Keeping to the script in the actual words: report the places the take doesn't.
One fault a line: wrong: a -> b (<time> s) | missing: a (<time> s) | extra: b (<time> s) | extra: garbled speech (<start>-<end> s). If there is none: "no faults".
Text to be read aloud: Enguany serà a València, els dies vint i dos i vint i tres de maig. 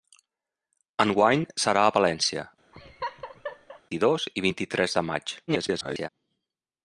missing: els dies vint (2.5 s)
extra: garbled speech (5.5-6.1 s)